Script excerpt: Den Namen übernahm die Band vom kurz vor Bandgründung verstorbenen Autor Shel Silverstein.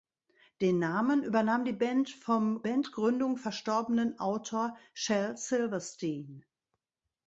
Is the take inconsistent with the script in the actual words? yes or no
yes